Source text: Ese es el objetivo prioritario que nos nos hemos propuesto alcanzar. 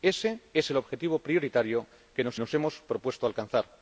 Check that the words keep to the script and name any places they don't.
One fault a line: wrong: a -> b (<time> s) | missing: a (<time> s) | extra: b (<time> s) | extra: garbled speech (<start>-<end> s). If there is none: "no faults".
no faults